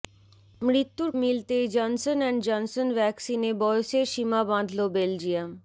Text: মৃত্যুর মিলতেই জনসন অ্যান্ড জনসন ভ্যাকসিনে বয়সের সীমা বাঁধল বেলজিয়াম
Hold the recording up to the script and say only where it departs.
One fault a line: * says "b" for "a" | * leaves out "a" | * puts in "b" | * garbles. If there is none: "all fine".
all fine